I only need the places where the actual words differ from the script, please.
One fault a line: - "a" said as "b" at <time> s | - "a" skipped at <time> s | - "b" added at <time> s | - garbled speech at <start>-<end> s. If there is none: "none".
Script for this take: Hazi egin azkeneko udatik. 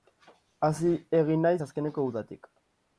- "naiz" added at 1.5 s